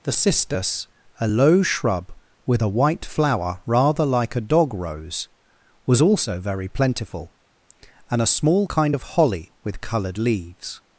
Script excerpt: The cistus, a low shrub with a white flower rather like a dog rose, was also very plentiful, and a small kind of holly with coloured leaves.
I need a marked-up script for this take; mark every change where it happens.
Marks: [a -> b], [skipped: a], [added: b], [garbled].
The cistus, a low shrub with a white flower rather like a dog rose, was also very plentiful, and a small kind of holly with coloured leaves.